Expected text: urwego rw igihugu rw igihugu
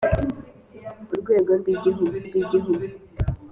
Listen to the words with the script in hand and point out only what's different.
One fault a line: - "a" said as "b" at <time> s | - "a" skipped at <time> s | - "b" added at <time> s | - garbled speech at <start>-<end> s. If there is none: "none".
none